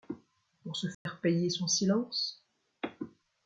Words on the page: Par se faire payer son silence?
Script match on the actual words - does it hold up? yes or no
no